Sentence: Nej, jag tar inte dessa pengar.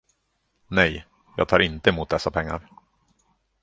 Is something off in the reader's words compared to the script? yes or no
yes